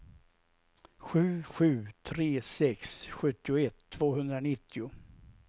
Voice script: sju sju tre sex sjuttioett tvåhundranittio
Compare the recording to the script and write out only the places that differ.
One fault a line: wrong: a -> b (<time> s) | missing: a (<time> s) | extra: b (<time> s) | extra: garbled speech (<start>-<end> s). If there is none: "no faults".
no faults